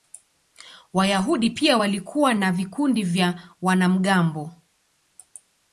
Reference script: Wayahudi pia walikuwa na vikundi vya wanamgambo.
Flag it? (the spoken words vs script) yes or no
no